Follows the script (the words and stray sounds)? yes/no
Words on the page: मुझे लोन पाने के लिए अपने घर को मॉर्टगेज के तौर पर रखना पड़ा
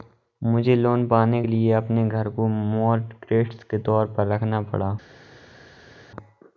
yes